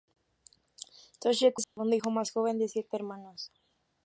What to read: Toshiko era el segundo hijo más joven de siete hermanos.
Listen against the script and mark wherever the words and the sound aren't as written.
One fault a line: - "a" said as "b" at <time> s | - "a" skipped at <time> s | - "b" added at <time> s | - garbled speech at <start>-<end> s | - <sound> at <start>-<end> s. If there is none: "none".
- "era" skipped at 1.6 s
- dropout at 1.6-1.8 s